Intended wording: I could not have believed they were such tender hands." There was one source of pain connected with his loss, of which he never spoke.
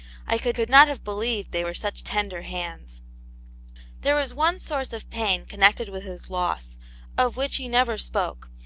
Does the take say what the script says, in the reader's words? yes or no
no